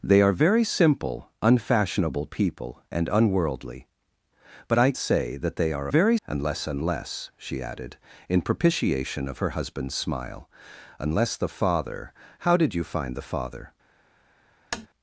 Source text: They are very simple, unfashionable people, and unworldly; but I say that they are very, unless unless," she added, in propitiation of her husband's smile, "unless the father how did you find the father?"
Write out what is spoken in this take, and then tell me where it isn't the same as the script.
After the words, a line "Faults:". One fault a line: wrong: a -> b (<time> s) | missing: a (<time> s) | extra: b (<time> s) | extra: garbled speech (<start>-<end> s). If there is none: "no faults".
They are very simple, unfashionable people, and unworldly; but I say that they are very, unless unless," she added, in propitiation of her husband's smile, "unless the father how did you find the father?"
Faults:
no faults